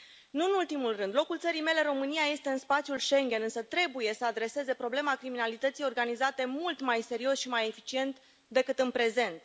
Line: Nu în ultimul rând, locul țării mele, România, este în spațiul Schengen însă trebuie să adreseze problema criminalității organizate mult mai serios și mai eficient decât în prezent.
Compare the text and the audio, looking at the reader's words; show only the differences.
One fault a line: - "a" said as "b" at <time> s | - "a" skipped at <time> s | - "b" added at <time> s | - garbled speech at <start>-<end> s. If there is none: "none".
none